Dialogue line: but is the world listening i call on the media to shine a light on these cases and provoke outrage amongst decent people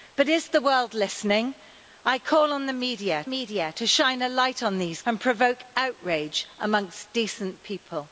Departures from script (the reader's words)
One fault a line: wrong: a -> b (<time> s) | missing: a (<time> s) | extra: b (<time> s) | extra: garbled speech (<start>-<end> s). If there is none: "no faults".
extra: media (3.2 s)
missing: cases (5.0 s)